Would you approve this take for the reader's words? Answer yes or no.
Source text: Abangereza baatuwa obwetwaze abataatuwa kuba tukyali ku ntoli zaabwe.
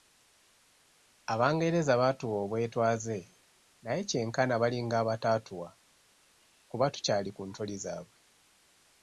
no